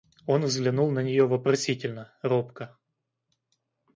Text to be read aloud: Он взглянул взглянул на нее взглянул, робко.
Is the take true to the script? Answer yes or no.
no